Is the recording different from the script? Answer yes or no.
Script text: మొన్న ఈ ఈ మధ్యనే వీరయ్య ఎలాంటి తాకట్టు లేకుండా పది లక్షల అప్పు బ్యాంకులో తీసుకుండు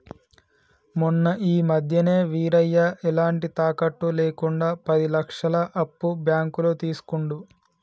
yes